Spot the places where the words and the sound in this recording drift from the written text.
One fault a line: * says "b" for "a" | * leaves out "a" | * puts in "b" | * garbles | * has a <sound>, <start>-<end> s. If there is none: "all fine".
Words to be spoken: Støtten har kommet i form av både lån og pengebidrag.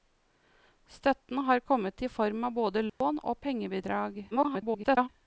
* has a dropout, 2.9-3.0 s
* garbles